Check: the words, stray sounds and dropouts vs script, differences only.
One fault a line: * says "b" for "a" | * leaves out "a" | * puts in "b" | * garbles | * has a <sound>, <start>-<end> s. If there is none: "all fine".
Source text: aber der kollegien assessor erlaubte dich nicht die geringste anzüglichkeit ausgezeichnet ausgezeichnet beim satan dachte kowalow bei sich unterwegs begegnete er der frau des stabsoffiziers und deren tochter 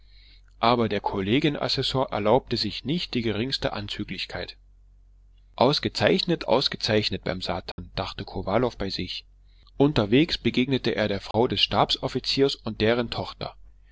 * says "sich" for "dich"
* has a dropout, 7.7-7.8 s
* has a dropout, 11.3-11.3 s